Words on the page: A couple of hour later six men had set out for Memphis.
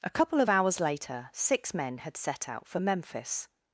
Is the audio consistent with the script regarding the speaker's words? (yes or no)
no